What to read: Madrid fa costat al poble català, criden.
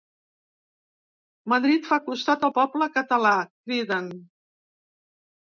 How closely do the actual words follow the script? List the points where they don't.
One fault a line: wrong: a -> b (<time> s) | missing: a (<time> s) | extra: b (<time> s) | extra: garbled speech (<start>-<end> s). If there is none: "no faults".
no faults